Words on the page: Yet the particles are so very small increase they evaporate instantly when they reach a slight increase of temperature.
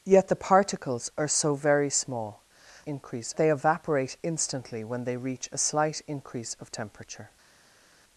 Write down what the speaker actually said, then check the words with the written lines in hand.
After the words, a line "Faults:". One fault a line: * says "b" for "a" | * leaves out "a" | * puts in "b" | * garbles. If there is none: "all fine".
Yet the particles are so very small increase they evaporate instantly when they reach a slight increase of temperature.
Faults:
all fine